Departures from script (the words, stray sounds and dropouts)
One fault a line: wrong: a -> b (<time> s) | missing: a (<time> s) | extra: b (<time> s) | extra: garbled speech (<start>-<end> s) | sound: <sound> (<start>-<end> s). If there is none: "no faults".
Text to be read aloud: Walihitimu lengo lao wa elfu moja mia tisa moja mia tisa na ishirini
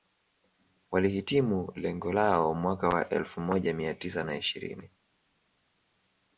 extra: mwaka (2.5 s)
missing: moja mia tisa (4.2 s)